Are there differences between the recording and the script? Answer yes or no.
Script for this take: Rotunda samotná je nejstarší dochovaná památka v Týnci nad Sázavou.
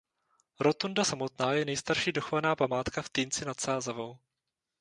no